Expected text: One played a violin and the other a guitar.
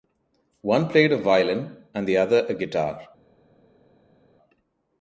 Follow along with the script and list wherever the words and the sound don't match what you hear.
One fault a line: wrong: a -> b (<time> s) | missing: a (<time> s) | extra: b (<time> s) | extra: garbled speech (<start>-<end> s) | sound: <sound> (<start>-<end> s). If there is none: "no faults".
no faults